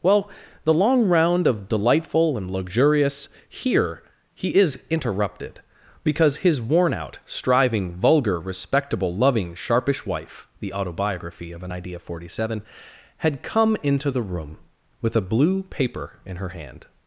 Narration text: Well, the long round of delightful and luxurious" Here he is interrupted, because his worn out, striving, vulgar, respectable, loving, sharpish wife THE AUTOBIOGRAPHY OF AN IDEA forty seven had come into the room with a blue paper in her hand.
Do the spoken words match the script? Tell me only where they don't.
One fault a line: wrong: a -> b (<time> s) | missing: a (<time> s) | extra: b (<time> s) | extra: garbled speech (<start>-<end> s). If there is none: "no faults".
no faults